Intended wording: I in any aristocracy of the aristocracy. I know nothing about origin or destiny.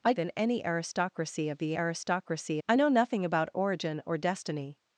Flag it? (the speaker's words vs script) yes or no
no